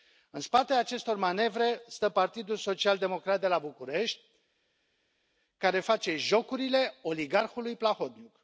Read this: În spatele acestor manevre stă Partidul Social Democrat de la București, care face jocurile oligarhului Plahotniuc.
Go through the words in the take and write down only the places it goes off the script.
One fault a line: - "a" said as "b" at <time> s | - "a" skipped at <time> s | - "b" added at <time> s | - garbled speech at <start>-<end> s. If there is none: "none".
none